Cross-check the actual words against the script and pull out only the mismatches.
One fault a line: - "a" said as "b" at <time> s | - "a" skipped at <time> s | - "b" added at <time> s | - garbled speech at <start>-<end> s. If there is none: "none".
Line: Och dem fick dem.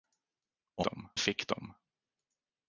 none